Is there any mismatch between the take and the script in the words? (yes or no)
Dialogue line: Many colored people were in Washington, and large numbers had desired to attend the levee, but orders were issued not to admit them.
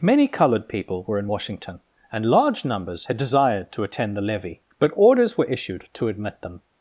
yes